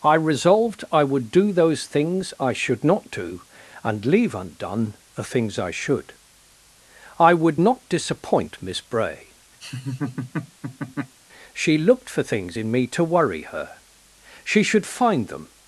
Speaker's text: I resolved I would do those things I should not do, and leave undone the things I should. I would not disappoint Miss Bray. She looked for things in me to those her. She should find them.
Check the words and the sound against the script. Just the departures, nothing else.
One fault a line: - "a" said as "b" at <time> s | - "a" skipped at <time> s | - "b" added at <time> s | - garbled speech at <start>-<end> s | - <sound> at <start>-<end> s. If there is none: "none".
- laugh at 9.6-11.2 s
- "those" said as "worry" at 13.0 s